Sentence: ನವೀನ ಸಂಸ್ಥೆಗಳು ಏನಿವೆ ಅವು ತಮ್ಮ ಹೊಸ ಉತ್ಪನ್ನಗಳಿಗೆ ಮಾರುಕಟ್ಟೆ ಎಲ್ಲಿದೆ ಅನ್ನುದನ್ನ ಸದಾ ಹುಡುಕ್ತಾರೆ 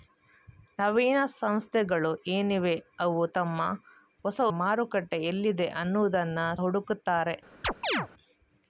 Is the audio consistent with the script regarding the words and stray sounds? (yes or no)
no